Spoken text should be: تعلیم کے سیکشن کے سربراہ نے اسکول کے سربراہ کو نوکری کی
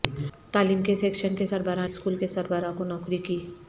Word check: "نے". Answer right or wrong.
wrong